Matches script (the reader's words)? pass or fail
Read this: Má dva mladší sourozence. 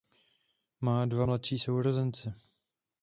pass